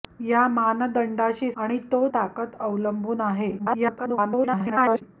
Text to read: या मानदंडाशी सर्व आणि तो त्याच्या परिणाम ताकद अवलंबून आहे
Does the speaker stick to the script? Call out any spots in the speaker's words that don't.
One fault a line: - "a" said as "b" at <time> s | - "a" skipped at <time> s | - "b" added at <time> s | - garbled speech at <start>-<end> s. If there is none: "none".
- "सर्व" skipped at 1.5 s
- "त्याच्या परिणाम" skipped at 2.1 s
- garbled speech at 3.6-5.0 s